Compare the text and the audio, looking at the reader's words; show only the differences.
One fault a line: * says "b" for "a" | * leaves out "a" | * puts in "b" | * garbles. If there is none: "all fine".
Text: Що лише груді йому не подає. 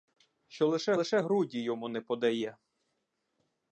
* puts in "лише"